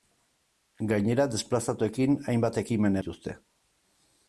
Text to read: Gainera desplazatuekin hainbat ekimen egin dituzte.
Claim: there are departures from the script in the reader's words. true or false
true